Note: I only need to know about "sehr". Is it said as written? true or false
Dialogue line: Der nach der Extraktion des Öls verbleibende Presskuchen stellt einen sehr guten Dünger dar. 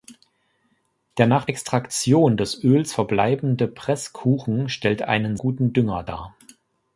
false